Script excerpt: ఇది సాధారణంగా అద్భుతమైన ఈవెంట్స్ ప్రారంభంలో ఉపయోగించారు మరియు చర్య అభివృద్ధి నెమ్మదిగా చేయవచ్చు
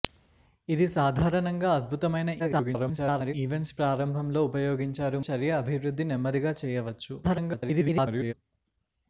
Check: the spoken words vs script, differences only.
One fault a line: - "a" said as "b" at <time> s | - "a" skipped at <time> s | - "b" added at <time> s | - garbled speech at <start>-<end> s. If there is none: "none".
- garbled speech at 2.4-3.3 s
- "మరియు" skipped at 5.2 s
- garbled speech at 7.2-8.3 s